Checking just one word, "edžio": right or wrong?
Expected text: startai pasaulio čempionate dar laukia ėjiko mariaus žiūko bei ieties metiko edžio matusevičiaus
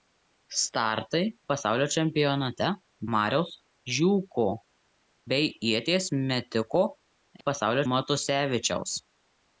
wrong